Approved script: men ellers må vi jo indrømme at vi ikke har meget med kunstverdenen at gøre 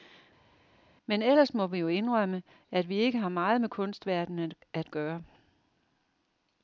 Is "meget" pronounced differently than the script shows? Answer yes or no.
no